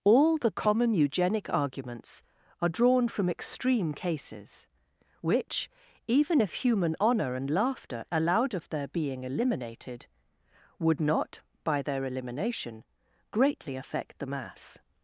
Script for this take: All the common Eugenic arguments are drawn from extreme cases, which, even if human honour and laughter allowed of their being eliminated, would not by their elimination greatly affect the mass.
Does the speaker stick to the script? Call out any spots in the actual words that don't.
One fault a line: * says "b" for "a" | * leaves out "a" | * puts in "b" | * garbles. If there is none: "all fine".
all fine